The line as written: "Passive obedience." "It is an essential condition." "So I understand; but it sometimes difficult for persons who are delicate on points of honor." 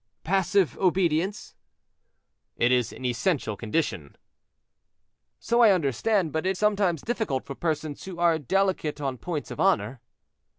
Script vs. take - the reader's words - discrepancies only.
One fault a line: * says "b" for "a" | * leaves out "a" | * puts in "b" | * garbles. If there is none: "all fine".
all fine